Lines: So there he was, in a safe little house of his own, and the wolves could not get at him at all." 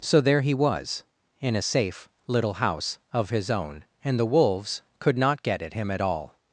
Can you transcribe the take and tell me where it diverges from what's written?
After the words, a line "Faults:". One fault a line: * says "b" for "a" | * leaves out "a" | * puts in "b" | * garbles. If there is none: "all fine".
So there he was, in a safe little house of his own, and the wolves could not get at him at all."
Faults:
all fine